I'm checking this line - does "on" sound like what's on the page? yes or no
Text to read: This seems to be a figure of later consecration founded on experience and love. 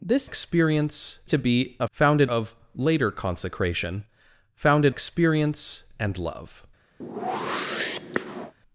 no